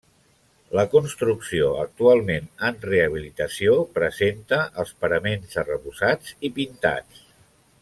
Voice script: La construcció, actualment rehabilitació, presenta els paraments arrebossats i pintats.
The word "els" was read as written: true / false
true